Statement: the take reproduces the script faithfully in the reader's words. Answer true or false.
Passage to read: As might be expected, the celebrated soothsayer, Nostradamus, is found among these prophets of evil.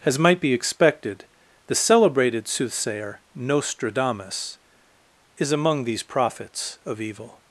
false